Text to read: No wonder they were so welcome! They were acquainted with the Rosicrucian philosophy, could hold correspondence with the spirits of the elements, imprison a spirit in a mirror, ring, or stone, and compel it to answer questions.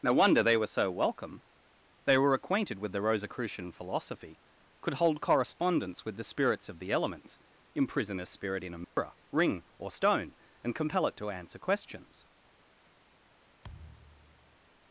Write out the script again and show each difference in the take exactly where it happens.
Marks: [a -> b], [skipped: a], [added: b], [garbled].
No wonder they were so welcome! They were acquainted with the Rosicrucian philosophy, could hold correspondence with the spirits of the elements, imprison a spirit in a mirror, ring, or stone, and compel it to answer questions.